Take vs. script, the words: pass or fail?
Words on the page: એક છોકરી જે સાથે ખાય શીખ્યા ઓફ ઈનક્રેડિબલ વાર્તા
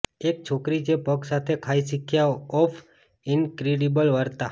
fail